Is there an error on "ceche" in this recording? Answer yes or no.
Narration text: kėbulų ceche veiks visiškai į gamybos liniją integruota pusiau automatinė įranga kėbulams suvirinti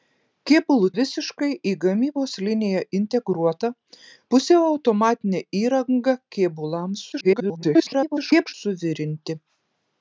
yes